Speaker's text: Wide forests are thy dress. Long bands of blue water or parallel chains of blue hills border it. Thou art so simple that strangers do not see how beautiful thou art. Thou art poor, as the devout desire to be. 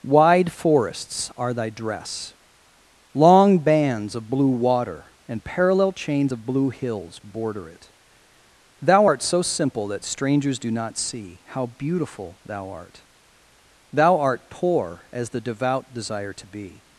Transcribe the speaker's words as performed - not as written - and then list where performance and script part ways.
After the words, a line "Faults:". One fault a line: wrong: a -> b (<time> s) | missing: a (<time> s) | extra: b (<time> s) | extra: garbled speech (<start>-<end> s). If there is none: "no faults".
Wide forests are thy dress. Long bands of blue water and parallel chains of blue hills border it. Thou art so simple that strangers do not see how beautiful thou art. Thou art poor, as the devout desire to be.
Faults:
wrong: or -> and (5.3 s)